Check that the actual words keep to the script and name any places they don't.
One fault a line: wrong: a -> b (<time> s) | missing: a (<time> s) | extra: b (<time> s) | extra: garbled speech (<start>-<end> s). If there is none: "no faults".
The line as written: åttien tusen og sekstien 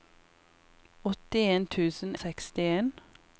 no faults